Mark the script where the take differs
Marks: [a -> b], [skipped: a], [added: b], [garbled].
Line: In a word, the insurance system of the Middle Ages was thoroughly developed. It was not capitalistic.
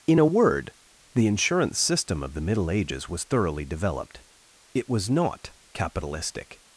In a word, the insurance system of the Middle Ages was thoroughly developed. It was not capitalistic.